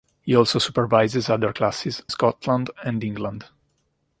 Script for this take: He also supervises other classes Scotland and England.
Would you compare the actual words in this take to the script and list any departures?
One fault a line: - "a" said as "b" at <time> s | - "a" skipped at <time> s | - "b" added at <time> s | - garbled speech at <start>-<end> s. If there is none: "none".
none